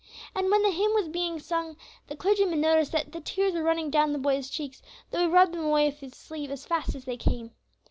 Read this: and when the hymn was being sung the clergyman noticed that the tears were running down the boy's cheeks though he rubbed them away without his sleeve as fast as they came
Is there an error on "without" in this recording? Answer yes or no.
yes